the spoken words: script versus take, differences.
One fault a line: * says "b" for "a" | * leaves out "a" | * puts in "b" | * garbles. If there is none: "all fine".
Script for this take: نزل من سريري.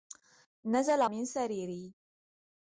all fine